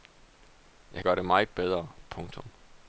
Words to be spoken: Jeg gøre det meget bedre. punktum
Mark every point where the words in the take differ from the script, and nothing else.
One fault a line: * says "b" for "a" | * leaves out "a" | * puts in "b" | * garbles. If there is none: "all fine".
all fine